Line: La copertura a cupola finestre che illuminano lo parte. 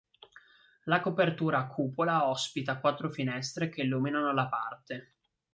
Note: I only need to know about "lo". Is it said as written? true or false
false